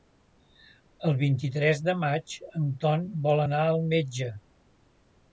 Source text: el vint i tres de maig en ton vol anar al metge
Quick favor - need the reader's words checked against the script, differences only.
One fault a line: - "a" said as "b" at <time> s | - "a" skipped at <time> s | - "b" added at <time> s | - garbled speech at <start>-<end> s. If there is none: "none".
none